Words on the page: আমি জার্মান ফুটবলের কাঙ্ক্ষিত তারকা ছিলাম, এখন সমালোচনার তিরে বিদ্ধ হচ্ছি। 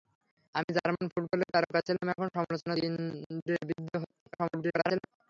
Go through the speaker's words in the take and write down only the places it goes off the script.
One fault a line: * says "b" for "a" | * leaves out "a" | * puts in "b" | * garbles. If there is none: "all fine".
* leaves out "কাঙ্ক্ষিত"
* garbles